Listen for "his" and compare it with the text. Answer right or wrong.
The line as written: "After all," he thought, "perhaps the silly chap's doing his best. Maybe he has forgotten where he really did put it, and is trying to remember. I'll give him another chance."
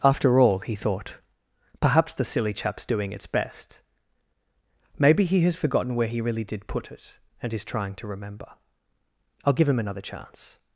wrong